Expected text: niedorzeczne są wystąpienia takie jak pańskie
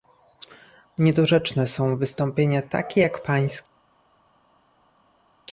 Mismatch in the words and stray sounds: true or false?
false